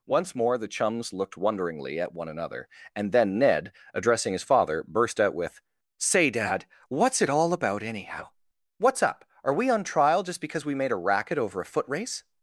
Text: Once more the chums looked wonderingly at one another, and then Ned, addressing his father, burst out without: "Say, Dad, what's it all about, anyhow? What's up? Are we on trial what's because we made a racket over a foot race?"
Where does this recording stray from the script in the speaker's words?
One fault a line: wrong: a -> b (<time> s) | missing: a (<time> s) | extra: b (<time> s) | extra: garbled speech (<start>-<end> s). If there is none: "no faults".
wrong: without -> with (5.3 s)
wrong: what's -> just (10.2 s)